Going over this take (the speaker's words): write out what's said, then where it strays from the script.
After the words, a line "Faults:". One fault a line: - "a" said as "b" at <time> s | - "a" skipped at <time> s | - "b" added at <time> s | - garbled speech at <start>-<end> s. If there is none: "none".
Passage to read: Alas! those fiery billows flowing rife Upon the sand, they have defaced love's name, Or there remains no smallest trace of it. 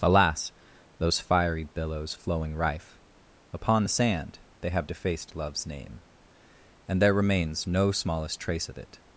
Alas! those fiery billows flowing rife Upon the sand, they have defaced love's name, And there remains no smallest trace of it.
Faults:
- "Or" said as "And" at 6.9 s